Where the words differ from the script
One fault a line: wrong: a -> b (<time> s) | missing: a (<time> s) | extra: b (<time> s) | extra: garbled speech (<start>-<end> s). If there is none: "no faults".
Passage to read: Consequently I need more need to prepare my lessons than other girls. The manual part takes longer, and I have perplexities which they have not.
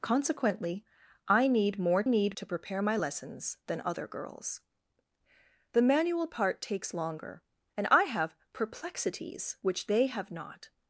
no faults